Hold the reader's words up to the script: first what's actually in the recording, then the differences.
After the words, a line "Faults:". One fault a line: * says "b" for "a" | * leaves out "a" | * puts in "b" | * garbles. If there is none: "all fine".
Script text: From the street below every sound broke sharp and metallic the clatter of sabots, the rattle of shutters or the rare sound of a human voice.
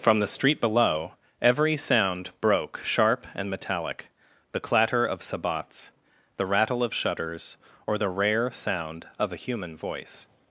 From the street below every sound broke sharp and metallic the clatter of sabots, the rattle of shutters or the rare sound of a human voice.
Faults:
all fine